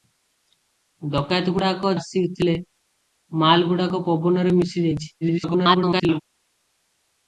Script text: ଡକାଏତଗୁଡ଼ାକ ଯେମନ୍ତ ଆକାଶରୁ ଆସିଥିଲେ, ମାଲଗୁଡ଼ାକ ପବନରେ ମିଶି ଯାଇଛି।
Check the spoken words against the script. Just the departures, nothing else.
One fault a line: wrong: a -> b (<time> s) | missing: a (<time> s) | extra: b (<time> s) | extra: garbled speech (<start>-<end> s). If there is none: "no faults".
missing: ଯେମନ୍ତ ଆକାଶରୁ (1.9 s)
extra: garbled speech (5.2-6.2 s)